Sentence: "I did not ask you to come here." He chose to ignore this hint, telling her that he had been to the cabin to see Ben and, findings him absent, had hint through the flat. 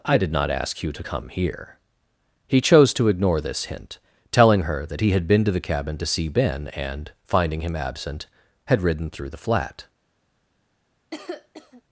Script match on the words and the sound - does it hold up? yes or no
no